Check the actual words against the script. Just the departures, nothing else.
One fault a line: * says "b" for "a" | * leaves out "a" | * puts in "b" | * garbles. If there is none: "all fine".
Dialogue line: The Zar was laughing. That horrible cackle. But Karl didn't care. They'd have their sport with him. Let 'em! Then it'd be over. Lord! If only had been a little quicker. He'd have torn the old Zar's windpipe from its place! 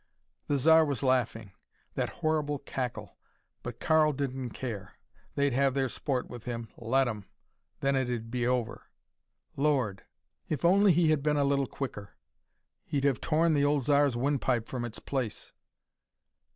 * puts in "he"